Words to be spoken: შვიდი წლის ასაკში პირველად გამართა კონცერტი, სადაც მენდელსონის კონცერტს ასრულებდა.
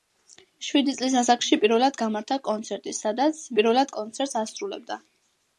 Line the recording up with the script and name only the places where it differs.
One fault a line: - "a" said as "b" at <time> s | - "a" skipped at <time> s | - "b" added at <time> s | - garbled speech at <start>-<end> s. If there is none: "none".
- "მენდელსონის" said as "პირველად" at 3.6 s